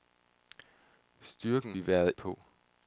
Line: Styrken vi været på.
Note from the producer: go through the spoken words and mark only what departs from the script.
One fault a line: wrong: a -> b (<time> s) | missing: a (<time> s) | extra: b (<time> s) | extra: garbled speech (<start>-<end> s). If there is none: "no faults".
no faults